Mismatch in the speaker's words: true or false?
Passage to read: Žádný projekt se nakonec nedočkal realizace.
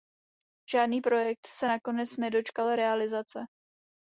false